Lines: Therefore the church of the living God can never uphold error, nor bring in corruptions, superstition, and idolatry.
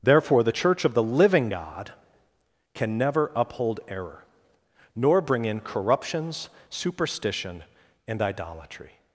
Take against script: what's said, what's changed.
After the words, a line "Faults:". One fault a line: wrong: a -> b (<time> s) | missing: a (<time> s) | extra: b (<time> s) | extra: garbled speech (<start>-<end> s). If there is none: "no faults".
Therefore the church of the living God can never uphold error, nor bring in corruptions, superstition, and idolatry.
Faults:
no faults